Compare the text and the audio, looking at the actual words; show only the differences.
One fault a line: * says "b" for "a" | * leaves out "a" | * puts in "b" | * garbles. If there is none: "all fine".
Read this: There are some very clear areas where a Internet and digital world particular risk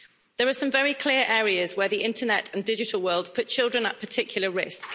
* says "the" for "a"
* puts in "put children at"